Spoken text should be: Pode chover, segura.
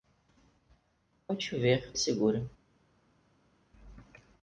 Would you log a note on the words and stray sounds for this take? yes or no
no